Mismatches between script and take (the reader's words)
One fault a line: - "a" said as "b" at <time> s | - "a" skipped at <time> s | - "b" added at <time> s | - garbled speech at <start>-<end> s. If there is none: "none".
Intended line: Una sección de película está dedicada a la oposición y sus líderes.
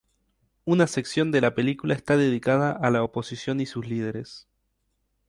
- "la" added at 1.4 s